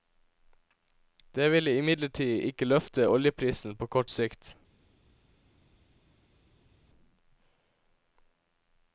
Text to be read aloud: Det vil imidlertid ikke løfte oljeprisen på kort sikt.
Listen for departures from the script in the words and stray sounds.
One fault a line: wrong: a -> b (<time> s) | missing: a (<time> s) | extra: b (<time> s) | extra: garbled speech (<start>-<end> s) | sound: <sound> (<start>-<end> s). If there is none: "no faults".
no faults